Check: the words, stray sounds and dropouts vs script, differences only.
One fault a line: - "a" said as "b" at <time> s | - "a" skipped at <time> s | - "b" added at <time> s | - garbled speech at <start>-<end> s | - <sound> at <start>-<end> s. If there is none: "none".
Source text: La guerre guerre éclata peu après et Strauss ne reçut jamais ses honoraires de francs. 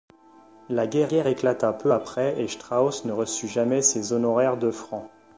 none